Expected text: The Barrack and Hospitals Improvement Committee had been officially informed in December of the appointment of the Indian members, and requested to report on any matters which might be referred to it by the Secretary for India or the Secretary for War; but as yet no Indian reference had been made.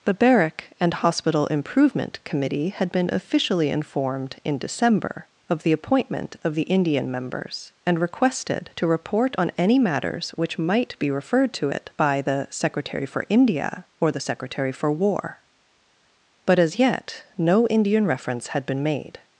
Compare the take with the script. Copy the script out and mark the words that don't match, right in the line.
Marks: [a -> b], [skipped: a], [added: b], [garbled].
The Barrack and [Hospitals -> Hospital] Improvement Committee had been officially informed in December of the appointment of the Indian members, and requested to report on any matters which might be referred to it by the Secretary for India or the Secretary for War; but as yet no Indian reference had been made.